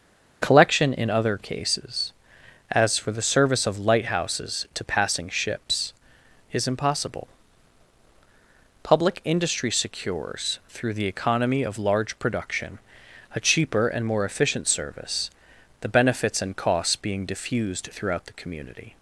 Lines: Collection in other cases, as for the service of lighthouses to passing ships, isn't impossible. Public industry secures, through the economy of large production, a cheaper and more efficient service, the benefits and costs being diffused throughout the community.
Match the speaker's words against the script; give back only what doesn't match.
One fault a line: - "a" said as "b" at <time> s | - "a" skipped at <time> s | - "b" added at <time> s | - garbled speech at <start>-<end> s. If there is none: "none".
- "isn't" said as "is" at 6.5 s